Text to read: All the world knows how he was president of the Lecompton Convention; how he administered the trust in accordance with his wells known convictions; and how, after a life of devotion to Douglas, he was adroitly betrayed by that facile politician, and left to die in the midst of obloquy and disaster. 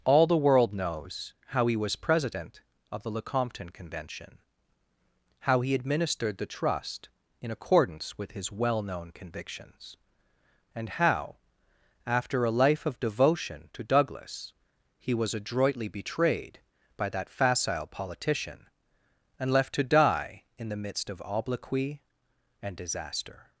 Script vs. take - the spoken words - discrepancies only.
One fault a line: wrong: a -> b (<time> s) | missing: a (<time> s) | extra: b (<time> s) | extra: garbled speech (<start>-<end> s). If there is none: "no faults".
wrong: wells -> well (8.5 s)